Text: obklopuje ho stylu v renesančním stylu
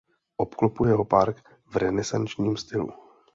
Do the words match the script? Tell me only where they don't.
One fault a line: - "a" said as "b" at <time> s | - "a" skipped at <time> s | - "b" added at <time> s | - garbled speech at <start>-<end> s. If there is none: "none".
- "stylu" said as "park" at 1.1 s